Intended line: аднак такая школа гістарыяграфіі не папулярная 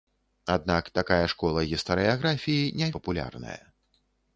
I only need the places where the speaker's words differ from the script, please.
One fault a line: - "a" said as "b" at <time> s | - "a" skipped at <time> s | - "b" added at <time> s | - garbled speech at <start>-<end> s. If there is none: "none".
none